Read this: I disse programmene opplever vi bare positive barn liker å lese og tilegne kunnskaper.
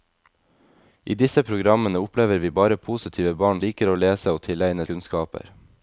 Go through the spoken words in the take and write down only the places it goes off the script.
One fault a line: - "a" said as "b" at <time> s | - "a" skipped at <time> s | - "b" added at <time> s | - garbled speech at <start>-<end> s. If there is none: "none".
none